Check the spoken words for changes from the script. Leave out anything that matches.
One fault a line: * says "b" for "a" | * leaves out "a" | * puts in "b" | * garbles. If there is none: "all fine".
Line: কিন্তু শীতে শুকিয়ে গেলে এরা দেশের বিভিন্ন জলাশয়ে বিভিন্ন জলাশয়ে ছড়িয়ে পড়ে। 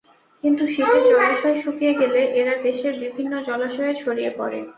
* puts in "জলাশয়"
* leaves out "বিভিন্ন জলাশয়ে"